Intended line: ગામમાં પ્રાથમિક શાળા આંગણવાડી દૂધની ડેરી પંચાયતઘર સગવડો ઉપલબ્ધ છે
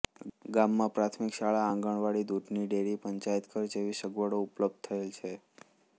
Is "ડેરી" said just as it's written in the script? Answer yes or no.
yes